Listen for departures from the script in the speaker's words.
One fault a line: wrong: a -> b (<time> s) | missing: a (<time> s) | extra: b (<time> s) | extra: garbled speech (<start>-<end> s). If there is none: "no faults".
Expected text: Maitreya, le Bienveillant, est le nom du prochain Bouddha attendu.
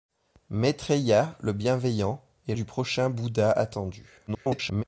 missing: le nom (2.5 s)
extra: garbled speech (4.3-4.8 s)